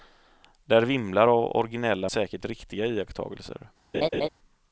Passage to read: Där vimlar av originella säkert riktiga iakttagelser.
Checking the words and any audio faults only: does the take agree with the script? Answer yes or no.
no